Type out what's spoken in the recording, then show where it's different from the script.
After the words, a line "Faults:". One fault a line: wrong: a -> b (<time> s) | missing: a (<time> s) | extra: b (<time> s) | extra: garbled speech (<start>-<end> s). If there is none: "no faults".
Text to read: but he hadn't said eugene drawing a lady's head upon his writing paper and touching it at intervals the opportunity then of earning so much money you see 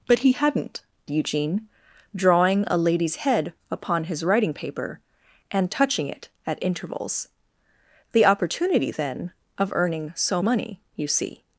but he hadn't eugene drawing a lady's head upon his writing paper and touching it at intervals the opportunity then of earning so money you see
Faults:
missing: said (0.8 s)
missing: much (10.4 s)